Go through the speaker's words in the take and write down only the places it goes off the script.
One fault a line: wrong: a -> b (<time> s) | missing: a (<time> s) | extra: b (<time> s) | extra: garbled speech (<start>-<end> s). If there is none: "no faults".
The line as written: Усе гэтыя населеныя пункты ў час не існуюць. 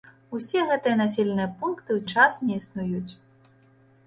no faults